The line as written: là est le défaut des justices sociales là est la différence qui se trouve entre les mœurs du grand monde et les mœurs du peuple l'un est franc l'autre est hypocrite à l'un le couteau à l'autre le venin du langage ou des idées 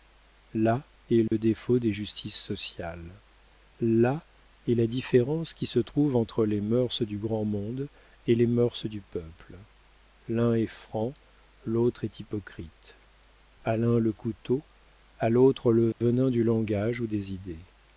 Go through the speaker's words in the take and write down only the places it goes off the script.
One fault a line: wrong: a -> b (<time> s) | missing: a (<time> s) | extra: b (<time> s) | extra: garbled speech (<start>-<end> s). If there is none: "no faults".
no faults